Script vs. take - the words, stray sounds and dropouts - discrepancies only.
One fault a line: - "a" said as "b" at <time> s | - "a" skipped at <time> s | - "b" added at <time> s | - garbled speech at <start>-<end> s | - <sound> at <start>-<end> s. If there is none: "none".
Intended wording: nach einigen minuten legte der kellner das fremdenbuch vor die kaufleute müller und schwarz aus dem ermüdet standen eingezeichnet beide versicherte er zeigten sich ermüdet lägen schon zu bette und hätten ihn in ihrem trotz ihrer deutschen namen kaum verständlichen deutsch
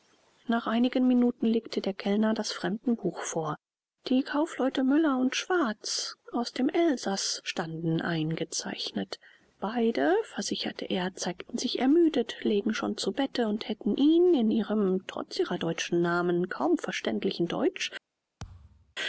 - "ermüdet" said as "elsaß" at 6.7 s
- thud at 18.4-19.0 s